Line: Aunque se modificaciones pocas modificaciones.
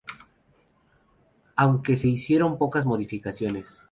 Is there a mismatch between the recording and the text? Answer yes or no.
yes